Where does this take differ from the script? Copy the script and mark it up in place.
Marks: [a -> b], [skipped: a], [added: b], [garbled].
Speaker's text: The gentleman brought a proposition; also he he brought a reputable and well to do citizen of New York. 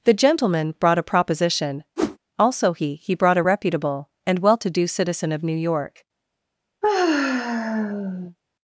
The gentleman brought a proposition; also he he brought a reputable and well to do citizen of New York.